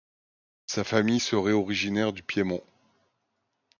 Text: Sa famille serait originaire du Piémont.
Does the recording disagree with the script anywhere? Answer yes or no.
no